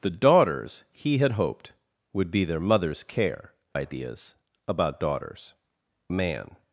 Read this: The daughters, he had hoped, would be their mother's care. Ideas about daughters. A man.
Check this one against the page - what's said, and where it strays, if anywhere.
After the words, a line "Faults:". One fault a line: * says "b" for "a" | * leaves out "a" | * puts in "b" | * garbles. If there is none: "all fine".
The daughters, he had hoped, would be their mother's care. Ideas about daughters. A man.
Faults:
all fine